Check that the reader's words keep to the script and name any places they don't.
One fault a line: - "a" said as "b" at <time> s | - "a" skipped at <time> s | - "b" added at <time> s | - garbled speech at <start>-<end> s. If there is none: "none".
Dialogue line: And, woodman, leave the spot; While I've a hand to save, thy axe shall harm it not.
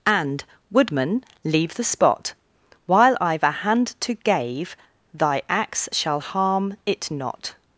- "save" said as "gave" at 4.2 s